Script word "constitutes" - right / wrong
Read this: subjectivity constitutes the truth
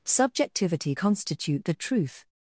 wrong